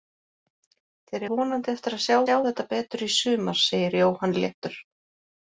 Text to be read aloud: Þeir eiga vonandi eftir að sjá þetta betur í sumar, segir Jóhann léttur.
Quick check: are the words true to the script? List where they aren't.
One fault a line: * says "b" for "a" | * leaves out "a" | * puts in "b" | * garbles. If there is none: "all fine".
* leaves out "eiga"
* puts in "sjá"